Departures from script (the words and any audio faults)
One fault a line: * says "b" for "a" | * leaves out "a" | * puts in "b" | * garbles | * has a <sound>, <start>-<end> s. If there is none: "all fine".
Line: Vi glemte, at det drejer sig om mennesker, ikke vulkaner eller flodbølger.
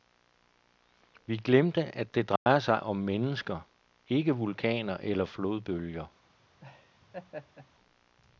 * has a dropout, 2.4-2.5 s
* has a laugh, 6.6-7.7 s